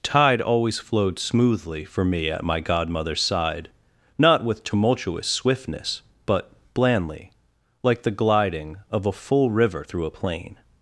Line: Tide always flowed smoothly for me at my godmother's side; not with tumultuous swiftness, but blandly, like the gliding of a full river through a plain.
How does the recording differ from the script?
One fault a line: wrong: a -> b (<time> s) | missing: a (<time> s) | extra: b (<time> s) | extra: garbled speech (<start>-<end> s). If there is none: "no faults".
no faults